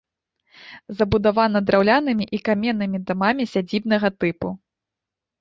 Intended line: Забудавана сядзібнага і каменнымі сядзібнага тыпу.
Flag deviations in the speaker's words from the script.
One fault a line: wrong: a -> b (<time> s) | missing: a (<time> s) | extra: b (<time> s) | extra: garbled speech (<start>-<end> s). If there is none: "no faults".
wrong: сядзібнага -> драўлянымі (1.7 s)
extra: дамамі (3.1 s)